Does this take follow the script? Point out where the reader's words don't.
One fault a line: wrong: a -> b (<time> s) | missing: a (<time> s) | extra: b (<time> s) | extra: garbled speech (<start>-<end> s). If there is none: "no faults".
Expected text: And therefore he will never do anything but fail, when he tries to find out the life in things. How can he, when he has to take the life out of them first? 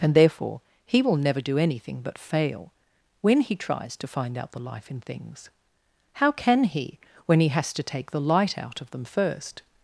wrong: life -> light (8.2 s)